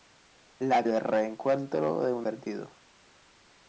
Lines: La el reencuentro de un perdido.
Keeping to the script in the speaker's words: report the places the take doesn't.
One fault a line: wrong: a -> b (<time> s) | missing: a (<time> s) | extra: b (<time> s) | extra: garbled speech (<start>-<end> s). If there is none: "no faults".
no faults